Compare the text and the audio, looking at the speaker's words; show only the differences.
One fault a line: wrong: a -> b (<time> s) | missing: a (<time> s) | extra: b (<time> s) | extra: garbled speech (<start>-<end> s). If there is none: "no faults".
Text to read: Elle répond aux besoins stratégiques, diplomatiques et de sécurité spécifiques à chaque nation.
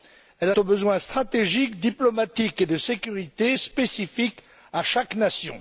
missing: répond (0.5 s)